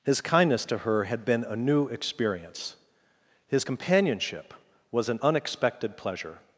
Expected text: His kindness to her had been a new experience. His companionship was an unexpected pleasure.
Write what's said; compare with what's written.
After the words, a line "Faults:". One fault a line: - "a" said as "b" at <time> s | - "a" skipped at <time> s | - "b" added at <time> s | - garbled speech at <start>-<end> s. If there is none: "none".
His kindness to her had been a new experience. His companionship was an unexpected pleasure.
Faults:
none